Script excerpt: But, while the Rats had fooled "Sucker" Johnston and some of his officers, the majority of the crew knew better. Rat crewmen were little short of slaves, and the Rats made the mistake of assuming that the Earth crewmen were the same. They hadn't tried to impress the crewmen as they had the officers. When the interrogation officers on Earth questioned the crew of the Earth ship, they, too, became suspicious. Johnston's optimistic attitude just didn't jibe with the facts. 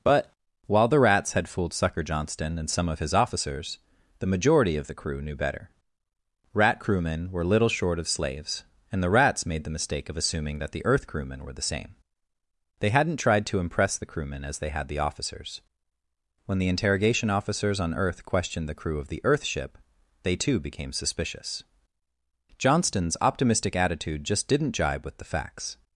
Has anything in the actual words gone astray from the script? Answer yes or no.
no